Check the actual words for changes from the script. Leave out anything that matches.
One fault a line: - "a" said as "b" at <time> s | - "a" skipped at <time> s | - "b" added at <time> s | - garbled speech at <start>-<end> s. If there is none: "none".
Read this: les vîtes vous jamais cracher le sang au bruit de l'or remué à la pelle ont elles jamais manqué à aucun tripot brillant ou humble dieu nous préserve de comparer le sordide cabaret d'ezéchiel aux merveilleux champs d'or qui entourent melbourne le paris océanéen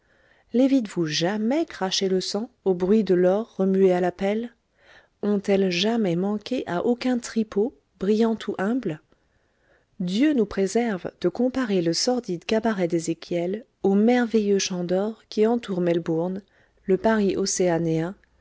none